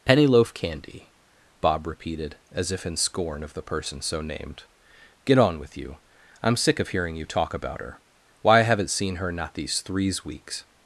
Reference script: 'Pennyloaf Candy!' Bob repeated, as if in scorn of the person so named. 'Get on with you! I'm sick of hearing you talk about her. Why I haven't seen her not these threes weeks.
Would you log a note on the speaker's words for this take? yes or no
no